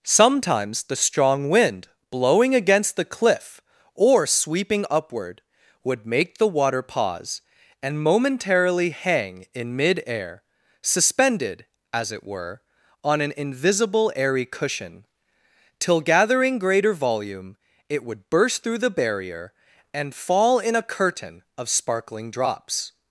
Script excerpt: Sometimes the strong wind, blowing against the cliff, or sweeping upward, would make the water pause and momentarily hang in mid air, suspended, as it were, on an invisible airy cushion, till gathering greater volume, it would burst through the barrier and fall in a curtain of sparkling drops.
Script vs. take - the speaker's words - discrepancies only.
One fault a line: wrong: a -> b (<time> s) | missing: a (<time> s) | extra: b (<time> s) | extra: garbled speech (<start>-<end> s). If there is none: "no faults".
no faults